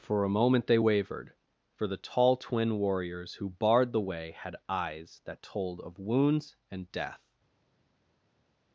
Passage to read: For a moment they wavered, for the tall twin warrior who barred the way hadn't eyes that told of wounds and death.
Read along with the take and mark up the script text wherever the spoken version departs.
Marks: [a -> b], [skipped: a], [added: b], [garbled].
For a moment they wavered, for the tall twin [warrior -> warriors] who barred the way [hadn't -> had] eyes that told of wounds and death.